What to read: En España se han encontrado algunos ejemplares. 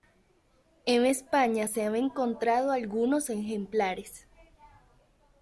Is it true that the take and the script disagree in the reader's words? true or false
false